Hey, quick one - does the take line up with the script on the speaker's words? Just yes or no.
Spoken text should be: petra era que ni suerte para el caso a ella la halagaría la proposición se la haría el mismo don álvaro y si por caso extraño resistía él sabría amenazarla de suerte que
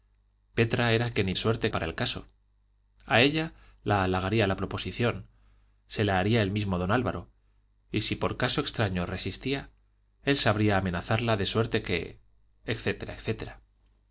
yes